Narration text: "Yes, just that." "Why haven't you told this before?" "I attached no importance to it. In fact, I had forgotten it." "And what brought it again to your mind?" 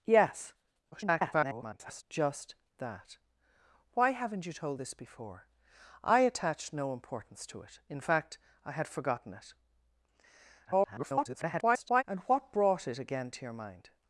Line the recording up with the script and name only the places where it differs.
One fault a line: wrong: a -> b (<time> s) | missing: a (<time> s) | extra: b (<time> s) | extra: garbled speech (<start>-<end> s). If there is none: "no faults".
extra: garbled speech (0.9-2.0 s)
extra: garbled speech (10.6-12.0 s)